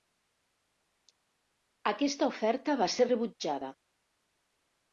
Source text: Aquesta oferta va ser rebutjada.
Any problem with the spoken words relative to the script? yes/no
no